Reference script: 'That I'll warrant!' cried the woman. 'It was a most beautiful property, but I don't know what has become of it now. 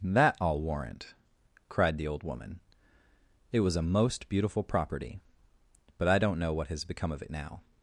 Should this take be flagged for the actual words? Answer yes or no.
yes